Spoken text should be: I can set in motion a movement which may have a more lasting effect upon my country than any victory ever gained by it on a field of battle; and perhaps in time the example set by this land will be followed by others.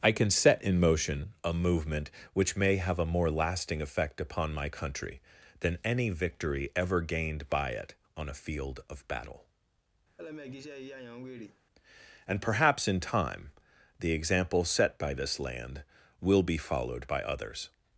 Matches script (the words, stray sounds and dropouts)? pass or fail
fail